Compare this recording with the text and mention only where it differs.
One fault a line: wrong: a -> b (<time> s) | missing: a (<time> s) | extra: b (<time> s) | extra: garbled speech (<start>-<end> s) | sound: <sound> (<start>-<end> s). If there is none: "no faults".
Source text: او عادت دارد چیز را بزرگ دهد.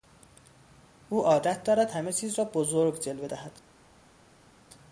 extra: همه (1.9 s)
extra: جلوه (3.0 s)